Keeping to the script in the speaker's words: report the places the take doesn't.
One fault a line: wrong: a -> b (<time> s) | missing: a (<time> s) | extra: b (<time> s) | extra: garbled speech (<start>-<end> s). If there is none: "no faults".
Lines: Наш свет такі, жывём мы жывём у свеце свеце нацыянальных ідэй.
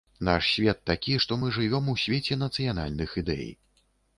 wrong: жывём -> што (1.2 s)
missing: свеце (2.4 s)